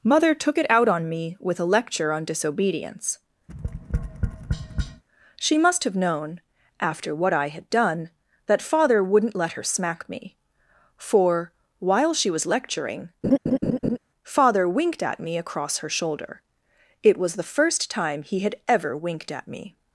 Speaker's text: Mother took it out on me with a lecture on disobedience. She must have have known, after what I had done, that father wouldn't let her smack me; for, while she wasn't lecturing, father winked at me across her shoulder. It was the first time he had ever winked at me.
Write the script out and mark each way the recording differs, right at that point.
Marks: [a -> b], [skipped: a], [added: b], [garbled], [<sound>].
Mother took it out on me with a lecture on disobedience. [tap] She must have [skipped: have] known, after what I had done, that father wouldn't let her smack me; for, while she [wasn't -> was] lecturing, [laugh] father winked at me across her shoulder. It was the first time he had ever winked at me.